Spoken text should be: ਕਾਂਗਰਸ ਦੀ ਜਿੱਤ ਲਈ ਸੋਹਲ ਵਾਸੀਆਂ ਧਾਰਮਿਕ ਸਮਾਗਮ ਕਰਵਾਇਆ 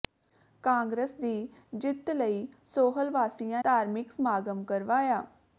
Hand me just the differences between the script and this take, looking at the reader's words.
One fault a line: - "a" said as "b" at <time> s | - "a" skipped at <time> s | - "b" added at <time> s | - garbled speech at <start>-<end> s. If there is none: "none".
none